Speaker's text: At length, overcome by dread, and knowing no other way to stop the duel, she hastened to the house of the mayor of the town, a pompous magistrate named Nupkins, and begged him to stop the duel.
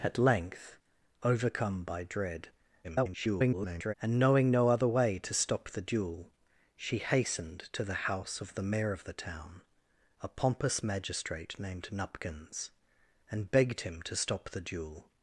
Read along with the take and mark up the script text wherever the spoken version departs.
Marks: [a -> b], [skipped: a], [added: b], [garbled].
At length, overcome by dread, [garbled] and knowing no other way to stop the duel, she hastened to the house of the mayor of the town, a pompous magistrate named Nupkins, and begged him to stop the duel.